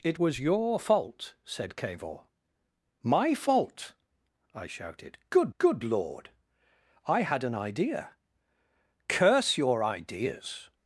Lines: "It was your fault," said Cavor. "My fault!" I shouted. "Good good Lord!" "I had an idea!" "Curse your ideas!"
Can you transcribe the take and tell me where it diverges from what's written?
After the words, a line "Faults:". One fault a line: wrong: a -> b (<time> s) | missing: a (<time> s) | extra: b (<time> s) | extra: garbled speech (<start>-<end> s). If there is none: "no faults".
"It was your fault," said Cavor. "My fault!" I shouted. "Good good Lord!" "I had an idea!" "Curse your ideas!"
Faults:
no faults